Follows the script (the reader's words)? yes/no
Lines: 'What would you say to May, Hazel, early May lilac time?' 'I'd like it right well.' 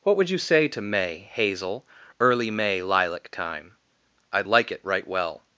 yes